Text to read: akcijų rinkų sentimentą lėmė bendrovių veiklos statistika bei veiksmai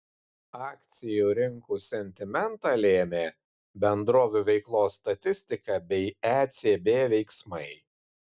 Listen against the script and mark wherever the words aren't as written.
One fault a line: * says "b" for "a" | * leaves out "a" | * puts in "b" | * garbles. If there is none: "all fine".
* puts in "ecb"